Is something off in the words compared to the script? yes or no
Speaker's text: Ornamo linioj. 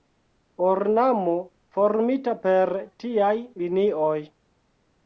yes